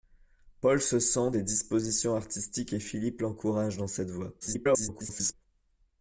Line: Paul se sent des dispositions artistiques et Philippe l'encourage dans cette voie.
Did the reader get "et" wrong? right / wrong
right